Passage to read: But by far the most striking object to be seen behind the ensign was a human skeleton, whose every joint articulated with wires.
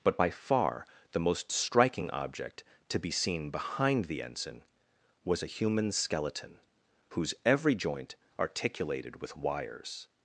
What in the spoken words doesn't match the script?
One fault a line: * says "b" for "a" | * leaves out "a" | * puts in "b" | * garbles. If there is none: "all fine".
all fine